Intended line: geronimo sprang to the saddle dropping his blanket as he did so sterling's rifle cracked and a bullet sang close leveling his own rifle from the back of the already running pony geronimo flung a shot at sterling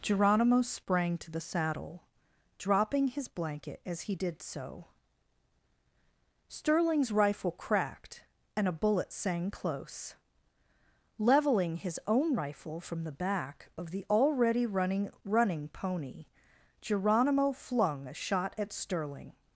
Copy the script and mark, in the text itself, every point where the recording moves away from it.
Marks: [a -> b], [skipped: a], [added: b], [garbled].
geronimo sprang to the saddle dropping his blanket as he did so sterling's rifle cracked and a bullet sang close leveling his own rifle from the back of the already running [added: running] pony geronimo flung a shot at sterling